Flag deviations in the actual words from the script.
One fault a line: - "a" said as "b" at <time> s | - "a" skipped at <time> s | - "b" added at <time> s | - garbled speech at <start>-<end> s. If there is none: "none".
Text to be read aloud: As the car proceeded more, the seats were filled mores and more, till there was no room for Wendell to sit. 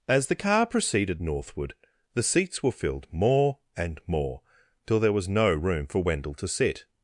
- "more" said as "northward" at 1.2 s
- "mores" said as "more" at 3.1 s